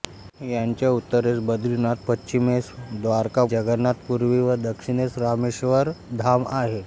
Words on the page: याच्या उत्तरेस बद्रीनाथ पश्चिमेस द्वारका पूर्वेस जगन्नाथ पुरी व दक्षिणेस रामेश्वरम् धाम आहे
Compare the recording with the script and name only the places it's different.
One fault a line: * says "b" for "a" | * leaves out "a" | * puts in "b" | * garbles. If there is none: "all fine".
* leaves out "पूर्वेस"